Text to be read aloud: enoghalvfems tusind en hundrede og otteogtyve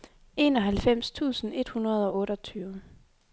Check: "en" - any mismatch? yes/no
yes